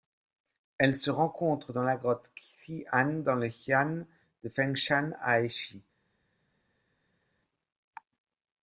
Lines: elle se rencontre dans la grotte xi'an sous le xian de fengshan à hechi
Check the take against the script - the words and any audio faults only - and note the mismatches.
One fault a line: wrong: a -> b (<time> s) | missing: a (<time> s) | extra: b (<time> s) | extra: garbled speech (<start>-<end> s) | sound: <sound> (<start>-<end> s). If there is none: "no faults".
wrong: sous -> dans (3.2 s)